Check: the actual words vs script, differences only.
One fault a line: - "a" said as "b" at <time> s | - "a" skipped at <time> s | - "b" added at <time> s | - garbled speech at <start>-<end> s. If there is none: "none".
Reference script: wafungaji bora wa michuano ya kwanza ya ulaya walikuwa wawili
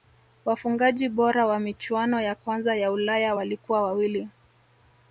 none